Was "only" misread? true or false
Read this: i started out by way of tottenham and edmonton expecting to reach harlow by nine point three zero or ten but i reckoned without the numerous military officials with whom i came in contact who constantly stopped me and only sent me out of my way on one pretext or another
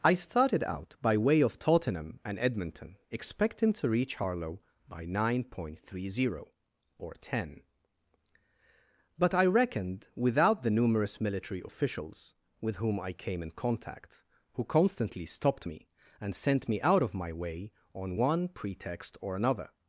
true